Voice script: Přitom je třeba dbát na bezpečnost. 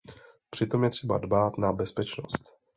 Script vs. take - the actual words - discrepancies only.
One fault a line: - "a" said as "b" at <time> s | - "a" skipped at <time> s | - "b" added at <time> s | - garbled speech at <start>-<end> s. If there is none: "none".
none